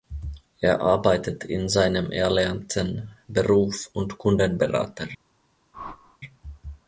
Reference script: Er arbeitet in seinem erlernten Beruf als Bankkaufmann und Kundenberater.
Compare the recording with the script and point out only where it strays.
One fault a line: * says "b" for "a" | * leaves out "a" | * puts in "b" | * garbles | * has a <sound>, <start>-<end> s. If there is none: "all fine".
* leaves out "als Bankkaufmann"
* has a whoosh, 5.7-6.2 s